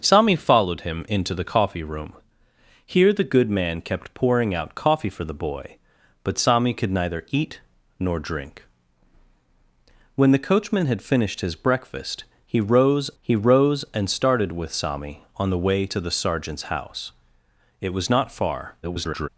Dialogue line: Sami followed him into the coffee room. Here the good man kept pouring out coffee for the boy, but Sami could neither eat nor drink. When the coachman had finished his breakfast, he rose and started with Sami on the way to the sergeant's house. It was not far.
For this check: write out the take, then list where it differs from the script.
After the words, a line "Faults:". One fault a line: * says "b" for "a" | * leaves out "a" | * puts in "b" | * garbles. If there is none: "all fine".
Sami followed him into the coffee room. Here the good man kept pouring out coffee for the boy, but Sami could neither eat nor drink. When the coachman had finished his breakfast, he rose he rose and started with Sami on the way to the sergeant's house. It was not far. [garbled]
Faults:
* puts in "he rose"
* garbles